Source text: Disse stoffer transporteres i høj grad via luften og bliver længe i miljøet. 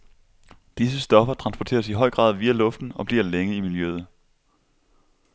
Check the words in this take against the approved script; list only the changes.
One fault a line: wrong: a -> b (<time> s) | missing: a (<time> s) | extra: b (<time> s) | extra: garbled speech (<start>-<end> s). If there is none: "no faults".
no faults